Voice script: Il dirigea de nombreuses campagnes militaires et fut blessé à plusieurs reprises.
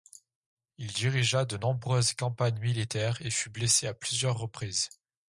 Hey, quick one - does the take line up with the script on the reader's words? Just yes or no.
yes